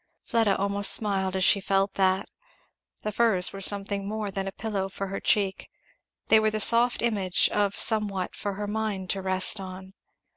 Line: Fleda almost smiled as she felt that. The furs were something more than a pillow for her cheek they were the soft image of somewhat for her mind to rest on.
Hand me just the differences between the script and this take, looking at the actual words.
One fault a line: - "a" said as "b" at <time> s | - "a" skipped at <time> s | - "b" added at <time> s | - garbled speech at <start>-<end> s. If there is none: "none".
none